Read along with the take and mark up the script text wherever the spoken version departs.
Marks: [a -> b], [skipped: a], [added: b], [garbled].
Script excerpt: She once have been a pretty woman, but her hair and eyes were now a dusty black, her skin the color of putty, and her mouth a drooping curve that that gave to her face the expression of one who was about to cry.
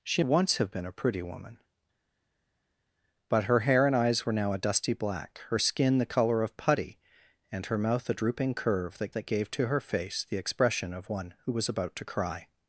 She once have been a pretty woman, but her hair and eyes were now a dusty black, her skin the color of putty, and her mouth a drooping curve that that gave to her face the expression of one who was about to cry.